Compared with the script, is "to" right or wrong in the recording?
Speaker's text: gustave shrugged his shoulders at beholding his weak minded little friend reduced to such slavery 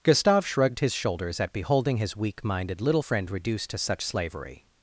right